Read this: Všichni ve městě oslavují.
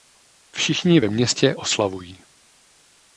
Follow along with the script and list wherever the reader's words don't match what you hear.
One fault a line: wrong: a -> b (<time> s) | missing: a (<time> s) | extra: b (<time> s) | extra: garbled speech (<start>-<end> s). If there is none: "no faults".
no faults